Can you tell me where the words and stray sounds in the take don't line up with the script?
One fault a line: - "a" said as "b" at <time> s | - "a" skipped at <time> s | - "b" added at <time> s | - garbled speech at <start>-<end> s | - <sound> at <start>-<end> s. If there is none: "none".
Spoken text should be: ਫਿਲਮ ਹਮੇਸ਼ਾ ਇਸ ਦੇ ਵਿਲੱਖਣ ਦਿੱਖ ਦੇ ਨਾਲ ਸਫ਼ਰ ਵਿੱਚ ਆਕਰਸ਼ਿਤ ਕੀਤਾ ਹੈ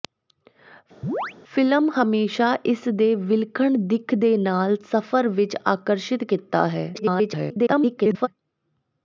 - chirp at 1.0-1.3 s
- garbled speech at 6.9-8.3 s